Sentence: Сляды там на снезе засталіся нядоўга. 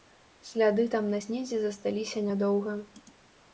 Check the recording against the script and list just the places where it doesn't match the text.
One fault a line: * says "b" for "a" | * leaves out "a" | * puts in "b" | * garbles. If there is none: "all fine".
all fine